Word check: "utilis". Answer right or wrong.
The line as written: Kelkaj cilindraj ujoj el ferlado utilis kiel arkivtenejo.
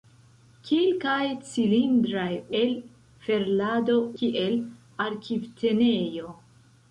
wrong